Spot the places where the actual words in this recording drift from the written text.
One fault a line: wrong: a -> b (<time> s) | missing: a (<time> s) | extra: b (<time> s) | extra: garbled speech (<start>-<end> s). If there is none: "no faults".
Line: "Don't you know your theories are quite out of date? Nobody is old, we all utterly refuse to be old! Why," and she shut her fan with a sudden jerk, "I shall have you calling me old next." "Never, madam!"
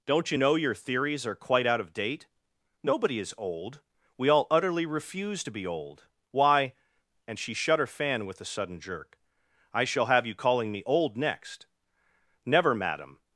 no faults